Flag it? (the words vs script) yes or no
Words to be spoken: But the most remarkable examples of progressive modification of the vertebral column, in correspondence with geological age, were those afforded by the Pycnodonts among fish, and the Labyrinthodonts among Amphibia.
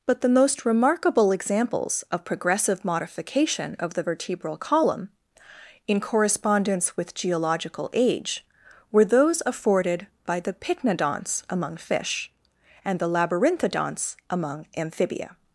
no